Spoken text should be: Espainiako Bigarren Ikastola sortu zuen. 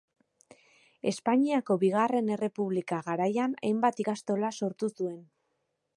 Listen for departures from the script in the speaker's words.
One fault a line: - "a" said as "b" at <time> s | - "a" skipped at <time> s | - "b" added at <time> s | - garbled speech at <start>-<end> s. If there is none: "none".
- "Errepublika garaian hainbat" added at 2.4 s